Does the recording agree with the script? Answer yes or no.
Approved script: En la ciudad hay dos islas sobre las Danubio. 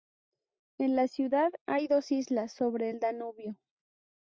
no